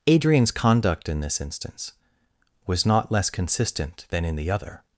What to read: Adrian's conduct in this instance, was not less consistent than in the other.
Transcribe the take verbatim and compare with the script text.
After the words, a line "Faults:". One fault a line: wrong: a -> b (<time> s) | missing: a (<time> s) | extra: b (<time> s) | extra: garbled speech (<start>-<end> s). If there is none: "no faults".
Adrian's conduct in this instance, was not less consistent than in the other.
Faults:
no faults